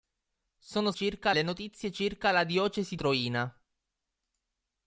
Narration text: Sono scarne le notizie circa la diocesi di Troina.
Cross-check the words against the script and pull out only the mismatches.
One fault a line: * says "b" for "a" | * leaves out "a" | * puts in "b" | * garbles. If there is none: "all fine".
* says "circa" for "scarne"
* leaves out "di"